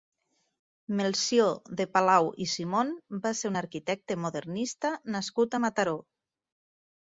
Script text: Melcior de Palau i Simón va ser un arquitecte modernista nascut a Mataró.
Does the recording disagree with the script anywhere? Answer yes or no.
no